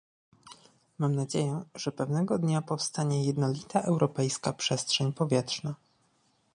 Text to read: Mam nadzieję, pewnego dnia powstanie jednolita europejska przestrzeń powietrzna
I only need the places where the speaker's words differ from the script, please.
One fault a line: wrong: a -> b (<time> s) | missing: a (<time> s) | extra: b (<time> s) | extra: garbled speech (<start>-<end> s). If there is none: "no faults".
extra: że (1.8 s)